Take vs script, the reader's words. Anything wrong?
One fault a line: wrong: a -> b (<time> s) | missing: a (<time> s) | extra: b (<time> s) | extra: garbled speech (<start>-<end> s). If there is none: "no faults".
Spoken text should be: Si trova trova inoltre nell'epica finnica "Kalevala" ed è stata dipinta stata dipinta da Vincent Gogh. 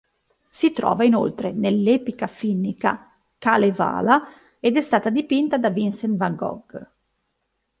missing: trova (1.0 s)
missing: stata dipinta (5.6 s)
extra: van (6.2 s)